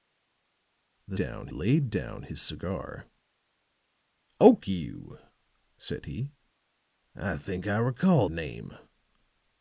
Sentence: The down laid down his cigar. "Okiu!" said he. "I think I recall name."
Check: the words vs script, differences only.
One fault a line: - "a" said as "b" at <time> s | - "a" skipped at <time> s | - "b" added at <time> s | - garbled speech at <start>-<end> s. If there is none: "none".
none